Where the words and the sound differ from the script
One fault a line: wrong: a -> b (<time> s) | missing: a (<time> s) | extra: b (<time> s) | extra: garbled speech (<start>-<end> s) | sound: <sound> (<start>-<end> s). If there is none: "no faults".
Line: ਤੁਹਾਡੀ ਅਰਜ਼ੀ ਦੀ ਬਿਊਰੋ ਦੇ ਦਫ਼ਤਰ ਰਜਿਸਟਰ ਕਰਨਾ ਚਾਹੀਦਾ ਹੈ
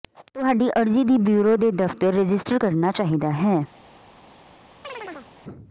sound: chirp (4.8-5.3 s)